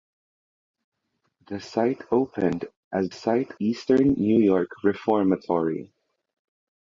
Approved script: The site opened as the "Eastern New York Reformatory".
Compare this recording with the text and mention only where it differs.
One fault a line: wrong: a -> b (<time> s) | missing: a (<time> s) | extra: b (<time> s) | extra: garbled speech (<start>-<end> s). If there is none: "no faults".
wrong: the -> site (3.1 s)